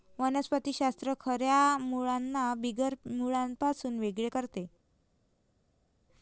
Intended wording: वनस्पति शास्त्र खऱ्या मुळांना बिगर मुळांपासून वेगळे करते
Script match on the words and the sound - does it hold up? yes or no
yes